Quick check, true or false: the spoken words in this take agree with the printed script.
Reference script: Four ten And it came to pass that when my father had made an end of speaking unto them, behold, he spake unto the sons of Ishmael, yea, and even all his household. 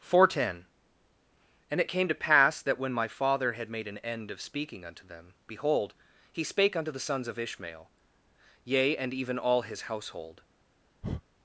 true